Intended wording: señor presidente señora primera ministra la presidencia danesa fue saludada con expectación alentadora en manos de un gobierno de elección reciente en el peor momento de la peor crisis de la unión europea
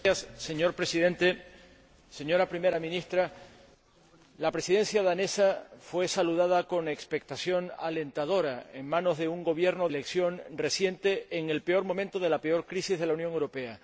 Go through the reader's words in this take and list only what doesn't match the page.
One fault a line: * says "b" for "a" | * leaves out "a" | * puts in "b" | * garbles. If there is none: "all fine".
* leaves out "de"